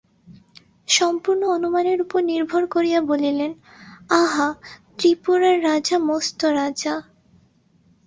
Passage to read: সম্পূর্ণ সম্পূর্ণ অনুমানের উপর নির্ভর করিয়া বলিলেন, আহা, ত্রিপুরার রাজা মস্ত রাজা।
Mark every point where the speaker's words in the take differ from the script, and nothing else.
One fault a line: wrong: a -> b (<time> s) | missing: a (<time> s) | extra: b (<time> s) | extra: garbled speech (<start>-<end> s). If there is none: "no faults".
missing: সম্পূর্ণ (1.4 s)